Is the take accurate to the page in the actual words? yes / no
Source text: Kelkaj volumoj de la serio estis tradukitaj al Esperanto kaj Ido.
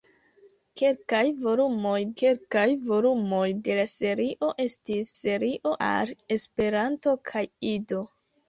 no